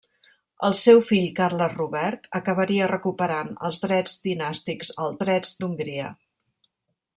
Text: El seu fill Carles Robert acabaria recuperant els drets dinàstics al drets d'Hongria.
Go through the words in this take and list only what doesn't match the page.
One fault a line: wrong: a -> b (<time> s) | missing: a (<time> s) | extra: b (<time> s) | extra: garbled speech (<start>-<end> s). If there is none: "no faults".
no faults